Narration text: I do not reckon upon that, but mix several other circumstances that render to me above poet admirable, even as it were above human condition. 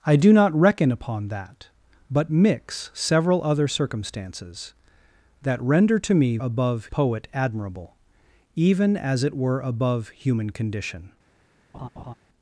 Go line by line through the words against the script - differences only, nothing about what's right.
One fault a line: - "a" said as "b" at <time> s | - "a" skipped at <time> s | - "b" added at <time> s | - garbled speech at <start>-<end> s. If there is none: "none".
none